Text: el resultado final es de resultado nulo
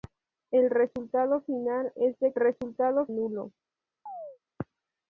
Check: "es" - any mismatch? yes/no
no